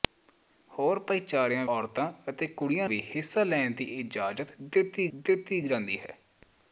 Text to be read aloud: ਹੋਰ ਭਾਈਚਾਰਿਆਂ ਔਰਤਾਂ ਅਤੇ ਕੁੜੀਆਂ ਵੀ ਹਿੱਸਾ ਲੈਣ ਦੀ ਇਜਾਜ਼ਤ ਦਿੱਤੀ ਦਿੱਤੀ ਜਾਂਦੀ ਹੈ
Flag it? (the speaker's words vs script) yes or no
no